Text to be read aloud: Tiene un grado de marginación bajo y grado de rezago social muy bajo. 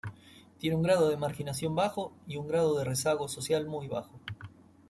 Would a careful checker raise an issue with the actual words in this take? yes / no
yes